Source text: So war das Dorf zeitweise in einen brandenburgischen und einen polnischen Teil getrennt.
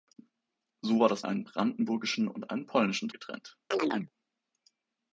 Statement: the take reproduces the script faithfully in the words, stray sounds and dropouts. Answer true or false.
false